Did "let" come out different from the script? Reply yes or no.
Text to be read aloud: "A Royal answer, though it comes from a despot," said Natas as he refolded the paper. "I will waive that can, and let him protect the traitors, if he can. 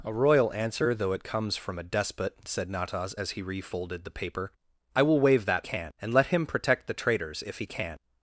no